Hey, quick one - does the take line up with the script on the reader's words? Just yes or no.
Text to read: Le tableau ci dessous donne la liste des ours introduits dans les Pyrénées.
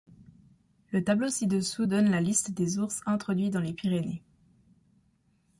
yes